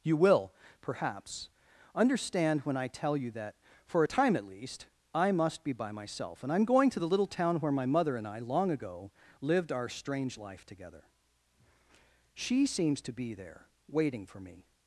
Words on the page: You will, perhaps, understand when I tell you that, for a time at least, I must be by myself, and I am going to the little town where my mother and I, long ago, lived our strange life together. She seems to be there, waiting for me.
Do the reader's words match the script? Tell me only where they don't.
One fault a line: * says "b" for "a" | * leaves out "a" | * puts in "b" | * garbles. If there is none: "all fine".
all fine